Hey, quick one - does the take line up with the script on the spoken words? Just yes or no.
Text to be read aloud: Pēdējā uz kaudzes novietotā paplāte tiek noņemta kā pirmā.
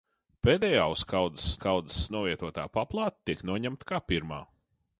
no